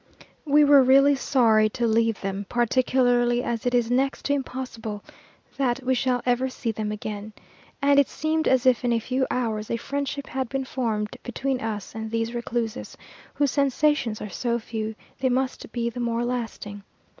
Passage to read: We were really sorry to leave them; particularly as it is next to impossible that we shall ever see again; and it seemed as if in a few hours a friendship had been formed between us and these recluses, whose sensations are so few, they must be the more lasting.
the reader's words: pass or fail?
fail